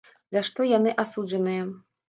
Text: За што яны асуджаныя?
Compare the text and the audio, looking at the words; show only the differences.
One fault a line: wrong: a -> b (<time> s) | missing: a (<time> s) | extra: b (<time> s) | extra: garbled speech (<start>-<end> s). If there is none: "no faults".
no faults